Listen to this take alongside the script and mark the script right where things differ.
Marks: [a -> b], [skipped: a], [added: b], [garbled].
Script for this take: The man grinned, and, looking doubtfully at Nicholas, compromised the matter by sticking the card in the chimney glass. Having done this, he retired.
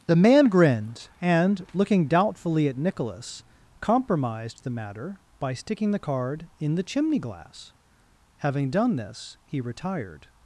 The man grinned, and, looking doubtfully at Nicholas, compromised the matter by sticking the card in the chimney glass. Having done this, he retired.